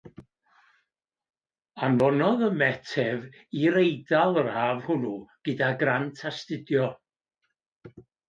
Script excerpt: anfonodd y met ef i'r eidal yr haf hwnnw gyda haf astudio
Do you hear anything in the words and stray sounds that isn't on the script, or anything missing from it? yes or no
yes